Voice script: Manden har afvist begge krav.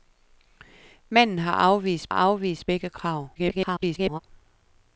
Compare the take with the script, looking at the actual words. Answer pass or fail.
fail